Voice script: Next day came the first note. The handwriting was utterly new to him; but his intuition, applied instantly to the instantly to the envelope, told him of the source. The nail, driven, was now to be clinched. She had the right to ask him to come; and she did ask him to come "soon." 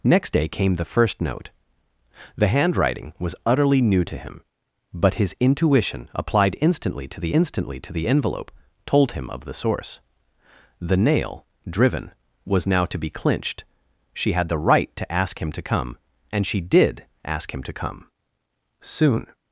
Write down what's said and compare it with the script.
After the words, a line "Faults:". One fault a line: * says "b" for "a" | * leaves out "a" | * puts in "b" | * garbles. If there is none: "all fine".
Next day came the first note. The handwriting was utterly new to him; but his intuition, applied instantly to the instantly to the envelope, told him of the source. The nail, driven, was now to be clinched. She had the right to ask him to come; and she did ask him to come "soon."
Faults:
all fine